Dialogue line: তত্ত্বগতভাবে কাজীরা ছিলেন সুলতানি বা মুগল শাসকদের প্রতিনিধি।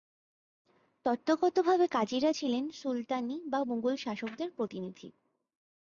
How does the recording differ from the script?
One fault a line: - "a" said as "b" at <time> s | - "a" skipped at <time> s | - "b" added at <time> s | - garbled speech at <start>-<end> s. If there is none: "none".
none